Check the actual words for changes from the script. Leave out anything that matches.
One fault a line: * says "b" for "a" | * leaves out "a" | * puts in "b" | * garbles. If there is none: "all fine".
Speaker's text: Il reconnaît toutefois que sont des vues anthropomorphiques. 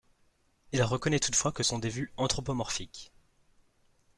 all fine